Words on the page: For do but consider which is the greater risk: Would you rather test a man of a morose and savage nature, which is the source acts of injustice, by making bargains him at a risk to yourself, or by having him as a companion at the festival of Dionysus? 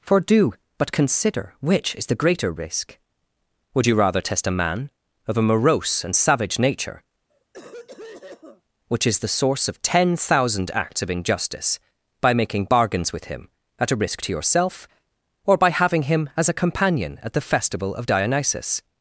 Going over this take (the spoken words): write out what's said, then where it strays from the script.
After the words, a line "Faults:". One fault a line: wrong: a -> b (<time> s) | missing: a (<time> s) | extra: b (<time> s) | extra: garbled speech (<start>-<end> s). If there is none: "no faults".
For do but consider which is the greater risk: Would you rather test a man of a morose and savage nature, which is the source of ten thousand acts of injustice, by making bargains with him at a risk to yourself, or by having him as a companion at the festival of Dionysus?
Faults:
extra: of ten thousand (9.7 s)
extra: with (13.1 s)